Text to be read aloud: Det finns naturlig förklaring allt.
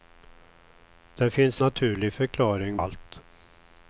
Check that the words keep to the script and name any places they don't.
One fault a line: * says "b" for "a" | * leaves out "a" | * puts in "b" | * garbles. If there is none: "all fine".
all fine